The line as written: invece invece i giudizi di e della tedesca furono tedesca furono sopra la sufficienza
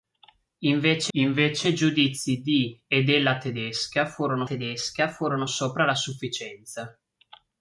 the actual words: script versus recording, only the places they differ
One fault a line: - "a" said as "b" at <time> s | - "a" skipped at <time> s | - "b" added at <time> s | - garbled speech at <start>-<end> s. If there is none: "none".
none